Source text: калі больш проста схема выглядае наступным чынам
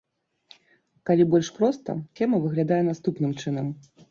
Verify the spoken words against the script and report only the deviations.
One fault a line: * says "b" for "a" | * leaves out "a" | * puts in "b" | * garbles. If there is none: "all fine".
all fine